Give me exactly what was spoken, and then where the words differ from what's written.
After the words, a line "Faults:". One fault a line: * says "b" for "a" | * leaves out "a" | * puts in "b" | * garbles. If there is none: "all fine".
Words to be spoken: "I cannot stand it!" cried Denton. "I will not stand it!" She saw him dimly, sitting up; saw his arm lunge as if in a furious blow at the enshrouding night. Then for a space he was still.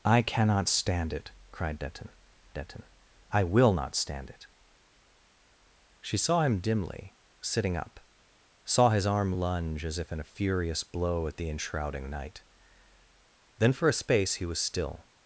"I cannot stand it!" cried Denton Denton. "I will not stand it!" She saw him dimly, sitting up; saw his arm lunge as if in a furious blow at the enshrouding night. Then for a space he was still.
Faults:
* puts in "Denton"